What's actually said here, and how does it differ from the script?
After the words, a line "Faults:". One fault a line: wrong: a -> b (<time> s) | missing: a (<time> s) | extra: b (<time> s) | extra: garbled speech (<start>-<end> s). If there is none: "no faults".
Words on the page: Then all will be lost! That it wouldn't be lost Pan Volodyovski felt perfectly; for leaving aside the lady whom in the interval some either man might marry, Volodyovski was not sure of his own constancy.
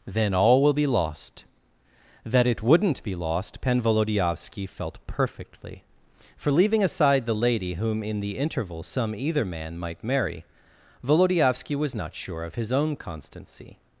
Then all will be lost! That it wouldn't be lost Pan Volodyovski felt perfectly; for leaving aside the lady whom in the interval some either man might marry, Volodyovski was not sure of his own constancy.
Faults:
no faults